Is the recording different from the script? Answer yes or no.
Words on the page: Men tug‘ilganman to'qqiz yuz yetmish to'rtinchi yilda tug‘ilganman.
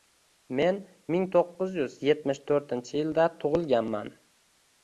yes